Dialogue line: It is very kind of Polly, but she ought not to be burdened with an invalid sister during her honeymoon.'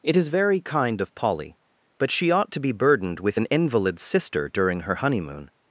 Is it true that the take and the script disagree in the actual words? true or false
true